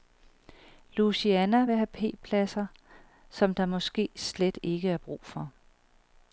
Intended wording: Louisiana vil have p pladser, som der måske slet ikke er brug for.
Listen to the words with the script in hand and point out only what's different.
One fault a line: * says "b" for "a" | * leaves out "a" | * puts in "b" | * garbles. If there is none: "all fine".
all fine